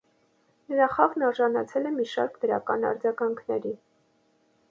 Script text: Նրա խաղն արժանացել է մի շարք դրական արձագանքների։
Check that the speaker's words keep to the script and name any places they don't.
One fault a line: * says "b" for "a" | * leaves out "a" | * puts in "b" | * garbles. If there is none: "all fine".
all fine